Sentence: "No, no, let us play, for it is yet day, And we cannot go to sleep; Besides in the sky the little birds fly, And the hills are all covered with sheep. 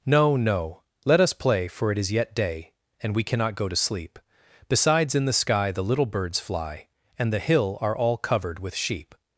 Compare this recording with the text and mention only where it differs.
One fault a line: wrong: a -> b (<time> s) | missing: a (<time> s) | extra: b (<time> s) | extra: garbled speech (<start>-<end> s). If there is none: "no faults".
wrong: hills -> hill (7.4 s)